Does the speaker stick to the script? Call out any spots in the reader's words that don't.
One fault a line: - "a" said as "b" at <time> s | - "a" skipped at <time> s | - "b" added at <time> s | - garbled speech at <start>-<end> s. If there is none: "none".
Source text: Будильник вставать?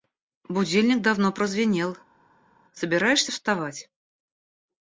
- "давно прозвенел собираешься" added at 1.0 s